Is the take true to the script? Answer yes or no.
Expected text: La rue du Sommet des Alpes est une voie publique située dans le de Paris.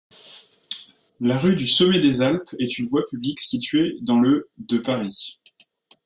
yes